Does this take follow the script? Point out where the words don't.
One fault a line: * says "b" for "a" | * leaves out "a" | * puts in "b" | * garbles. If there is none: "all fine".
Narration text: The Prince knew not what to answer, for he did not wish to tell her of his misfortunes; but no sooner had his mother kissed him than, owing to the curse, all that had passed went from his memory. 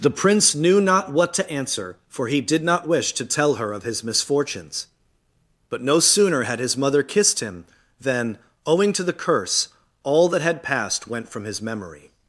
all fine